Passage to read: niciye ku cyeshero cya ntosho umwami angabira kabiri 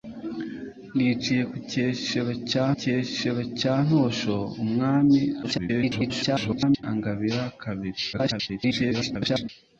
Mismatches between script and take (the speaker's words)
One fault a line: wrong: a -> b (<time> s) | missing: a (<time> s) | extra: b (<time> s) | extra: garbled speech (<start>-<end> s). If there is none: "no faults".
extra: cyeshero cya (2.8 s)
extra: garbled speech (5.4-6.8 s)
extra: garbled speech (8.1-9.5 s)